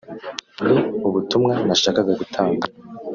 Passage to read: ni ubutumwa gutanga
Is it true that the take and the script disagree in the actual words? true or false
true